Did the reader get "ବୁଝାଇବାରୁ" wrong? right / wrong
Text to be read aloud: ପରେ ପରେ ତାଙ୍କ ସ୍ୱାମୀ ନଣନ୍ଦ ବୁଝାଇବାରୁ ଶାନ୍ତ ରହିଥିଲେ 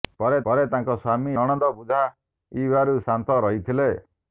right